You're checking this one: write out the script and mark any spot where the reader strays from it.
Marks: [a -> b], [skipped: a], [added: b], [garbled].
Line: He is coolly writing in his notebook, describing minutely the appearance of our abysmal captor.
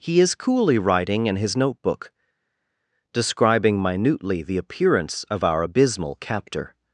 He is coolly writing in his notebook, describing minutely the appearance of our abysmal captor.